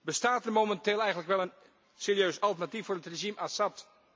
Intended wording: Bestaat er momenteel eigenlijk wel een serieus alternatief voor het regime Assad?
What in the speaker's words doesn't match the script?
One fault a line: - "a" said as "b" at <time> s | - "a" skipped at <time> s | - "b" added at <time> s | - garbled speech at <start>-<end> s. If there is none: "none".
none